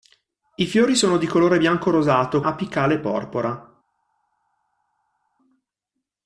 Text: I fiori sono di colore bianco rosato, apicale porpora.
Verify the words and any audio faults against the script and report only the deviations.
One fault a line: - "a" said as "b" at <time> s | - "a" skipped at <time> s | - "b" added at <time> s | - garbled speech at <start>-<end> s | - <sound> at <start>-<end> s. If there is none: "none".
none